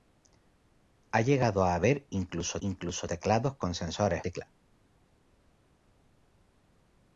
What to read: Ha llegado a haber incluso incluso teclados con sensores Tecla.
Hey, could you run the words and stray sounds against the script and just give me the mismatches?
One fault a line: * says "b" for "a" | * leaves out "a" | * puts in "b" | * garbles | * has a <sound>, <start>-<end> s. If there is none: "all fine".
all fine